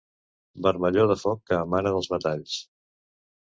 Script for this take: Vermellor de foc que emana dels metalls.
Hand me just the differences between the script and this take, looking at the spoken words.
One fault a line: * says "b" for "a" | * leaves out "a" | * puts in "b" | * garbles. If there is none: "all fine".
all fine